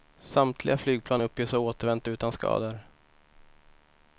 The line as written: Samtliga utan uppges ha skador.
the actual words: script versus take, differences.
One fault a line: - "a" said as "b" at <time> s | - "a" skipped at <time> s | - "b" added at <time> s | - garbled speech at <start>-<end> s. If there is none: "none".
- "utan" said as "flygplan" at 0.8 s
- "återvänt utan" added at 1.6 s